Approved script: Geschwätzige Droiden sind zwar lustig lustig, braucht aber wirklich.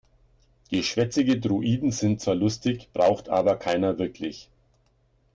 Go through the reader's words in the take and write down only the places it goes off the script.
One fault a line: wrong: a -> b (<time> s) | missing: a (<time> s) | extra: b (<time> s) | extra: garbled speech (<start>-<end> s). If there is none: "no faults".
missing: lustig (2.9 s)
extra: keiner (3.6 s)